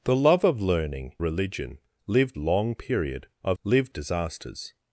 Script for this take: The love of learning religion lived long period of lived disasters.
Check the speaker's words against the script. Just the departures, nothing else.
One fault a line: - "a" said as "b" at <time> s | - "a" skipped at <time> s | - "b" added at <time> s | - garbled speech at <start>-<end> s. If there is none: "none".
none